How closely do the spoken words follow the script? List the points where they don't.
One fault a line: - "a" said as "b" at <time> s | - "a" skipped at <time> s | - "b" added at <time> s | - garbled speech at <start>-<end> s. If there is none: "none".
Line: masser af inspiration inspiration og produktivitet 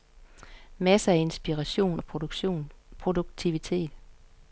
- "inspiration" skipped at 2.0 s